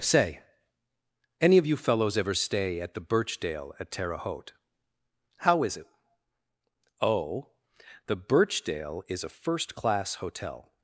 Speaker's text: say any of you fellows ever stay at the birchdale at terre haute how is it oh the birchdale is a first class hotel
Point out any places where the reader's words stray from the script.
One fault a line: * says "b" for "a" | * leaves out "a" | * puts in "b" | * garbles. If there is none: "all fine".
all fine